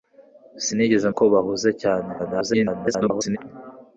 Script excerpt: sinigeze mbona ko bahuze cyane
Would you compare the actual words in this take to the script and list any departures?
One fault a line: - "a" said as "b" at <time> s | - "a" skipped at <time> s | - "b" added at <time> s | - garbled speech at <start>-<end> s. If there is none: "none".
- "mbona" skipped at 1.1 s
- garbled speech at 2.2-3.4 s